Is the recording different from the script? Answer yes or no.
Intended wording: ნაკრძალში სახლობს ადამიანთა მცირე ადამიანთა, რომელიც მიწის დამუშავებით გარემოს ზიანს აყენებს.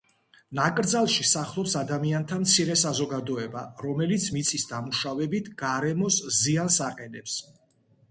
yes